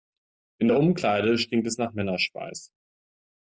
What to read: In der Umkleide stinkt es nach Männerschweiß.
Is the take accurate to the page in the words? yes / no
yes